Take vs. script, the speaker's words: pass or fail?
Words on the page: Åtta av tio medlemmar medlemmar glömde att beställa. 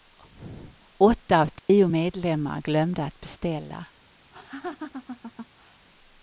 fail